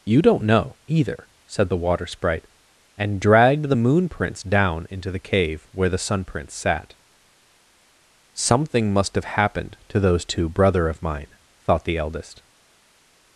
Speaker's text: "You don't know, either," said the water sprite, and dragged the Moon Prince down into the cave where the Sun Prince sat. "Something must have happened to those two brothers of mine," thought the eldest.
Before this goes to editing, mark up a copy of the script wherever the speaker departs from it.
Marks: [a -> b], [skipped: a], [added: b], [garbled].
"You don't know, either," said the water sprite, and dragged the Moon Prince down into the cave where the Sun Prince sat. "Something must have happened to those two [brothers -> brother] of mine," thought the eldest.